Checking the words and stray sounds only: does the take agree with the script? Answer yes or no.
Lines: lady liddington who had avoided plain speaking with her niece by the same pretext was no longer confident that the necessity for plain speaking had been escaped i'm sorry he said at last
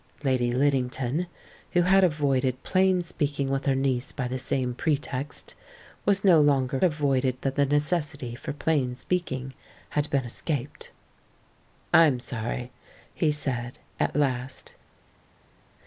no